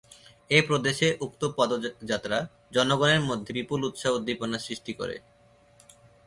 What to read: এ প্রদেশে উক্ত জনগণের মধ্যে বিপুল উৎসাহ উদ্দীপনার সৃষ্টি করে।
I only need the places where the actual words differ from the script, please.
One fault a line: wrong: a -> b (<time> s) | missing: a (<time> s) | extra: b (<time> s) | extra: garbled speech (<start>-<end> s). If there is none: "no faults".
extra: পদযাত্রা (1.6 s)